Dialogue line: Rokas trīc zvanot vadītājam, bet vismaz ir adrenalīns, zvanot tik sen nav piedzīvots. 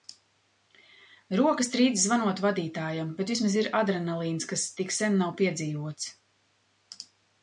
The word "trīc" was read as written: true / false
true